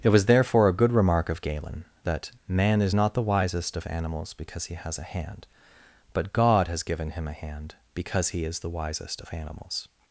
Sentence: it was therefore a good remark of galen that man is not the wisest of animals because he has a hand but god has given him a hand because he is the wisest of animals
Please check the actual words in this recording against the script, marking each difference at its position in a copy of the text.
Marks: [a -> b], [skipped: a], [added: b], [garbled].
it was therefore a good remark of galen that man is not the wisest of animals because he has a hand but god has given him a hand because he is the wisest of animals